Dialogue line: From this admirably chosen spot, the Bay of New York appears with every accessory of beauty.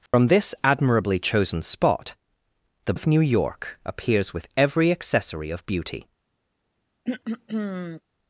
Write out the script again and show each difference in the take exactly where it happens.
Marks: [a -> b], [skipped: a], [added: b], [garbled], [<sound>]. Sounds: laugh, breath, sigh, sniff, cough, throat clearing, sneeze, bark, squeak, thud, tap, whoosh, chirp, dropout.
From [dropout] this admirably chosen spot, the [skipped: Bay] of New York appears with every accessory of beauty. [throat clearing]